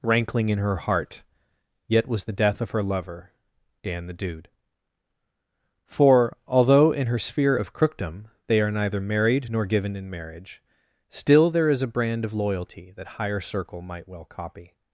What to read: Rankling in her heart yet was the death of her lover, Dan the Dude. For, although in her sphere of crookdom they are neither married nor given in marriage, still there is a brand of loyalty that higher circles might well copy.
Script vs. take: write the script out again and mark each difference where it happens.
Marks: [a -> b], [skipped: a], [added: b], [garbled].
Rankling in her heart yet was the death of her lover, Dan the Dude. For, although in her sphere of crookdom they are neither married nor given in marriage, still there is a brand of loyalty that higher [circles -> circle] might well copy.